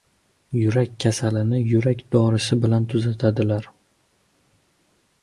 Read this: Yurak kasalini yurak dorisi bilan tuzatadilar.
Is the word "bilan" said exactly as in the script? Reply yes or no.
yes